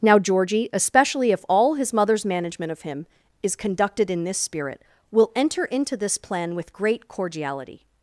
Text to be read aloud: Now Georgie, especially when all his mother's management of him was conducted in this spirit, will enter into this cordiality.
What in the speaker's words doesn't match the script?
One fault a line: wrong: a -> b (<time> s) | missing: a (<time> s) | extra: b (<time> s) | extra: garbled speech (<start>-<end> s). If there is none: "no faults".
wrong: when -> if (1.3 s)
wrong: was -> is (3.4 s)
extra: plan with great (6.2 s)